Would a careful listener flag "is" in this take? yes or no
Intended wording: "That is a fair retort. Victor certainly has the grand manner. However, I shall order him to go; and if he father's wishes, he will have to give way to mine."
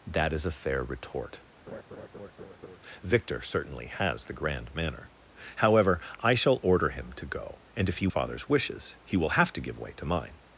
no